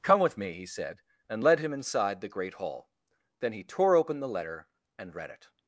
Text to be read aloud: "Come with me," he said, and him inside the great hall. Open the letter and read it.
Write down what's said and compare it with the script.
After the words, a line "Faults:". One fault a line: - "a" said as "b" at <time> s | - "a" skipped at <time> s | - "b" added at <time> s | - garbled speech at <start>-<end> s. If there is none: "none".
"Come with me," he said, and led him inside the great hall. Then he tore open the letter and read it.
Faults:
- "led" added at 1.4 s
- "Then he tore" added at 3.4 s